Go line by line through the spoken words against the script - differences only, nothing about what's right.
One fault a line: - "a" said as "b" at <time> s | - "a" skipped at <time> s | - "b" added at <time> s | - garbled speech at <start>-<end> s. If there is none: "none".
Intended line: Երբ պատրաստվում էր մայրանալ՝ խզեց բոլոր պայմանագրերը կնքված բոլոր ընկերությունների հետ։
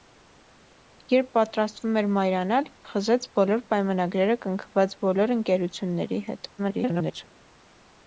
- garbled speech at 6.6-7.3 s